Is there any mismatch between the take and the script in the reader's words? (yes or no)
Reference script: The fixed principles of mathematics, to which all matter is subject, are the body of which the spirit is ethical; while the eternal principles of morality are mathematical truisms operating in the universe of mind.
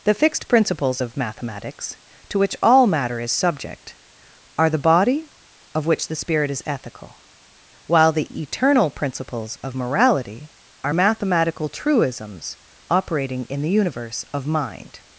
no